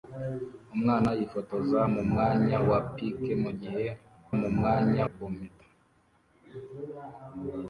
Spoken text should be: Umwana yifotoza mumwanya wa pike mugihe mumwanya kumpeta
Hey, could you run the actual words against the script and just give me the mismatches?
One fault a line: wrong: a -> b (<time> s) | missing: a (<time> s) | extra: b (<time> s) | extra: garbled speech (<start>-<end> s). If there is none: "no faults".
no faults